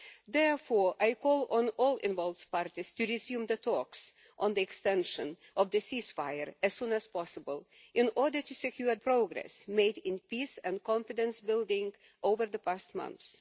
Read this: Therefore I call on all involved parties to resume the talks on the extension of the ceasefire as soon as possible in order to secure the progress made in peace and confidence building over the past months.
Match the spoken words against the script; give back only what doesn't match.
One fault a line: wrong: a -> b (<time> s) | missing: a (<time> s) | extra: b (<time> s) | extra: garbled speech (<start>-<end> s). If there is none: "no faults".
missing: the (9.0 s)